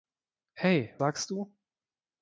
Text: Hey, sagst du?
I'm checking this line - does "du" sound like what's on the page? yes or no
yes